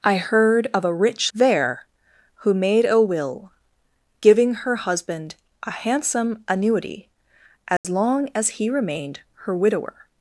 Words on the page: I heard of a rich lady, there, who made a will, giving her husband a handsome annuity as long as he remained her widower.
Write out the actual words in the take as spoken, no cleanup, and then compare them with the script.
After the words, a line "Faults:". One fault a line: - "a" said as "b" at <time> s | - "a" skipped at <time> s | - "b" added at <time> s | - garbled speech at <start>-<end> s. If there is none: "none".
I heard of a rich there, who made a will, giving her husband a handsome annuity as long as he remained her widower.
Faults:
- "lady" skipped at 1.3 s